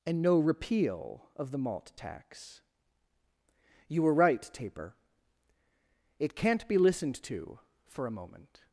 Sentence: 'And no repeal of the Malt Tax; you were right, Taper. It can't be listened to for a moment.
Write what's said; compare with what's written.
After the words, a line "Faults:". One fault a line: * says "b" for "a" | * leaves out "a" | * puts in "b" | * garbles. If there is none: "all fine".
'And no repeal of the Malt Tax; you were right, Taper. It can't be listened to for a moment.
Faults:
all fine